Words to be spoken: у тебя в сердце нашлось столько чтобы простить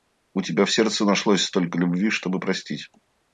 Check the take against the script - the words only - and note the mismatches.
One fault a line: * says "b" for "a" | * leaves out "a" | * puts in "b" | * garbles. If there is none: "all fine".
* puts in "любви"